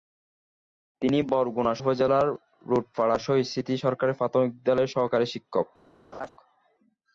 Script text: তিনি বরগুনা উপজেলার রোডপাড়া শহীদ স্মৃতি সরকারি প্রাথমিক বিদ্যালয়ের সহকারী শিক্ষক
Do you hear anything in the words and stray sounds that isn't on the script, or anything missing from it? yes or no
yes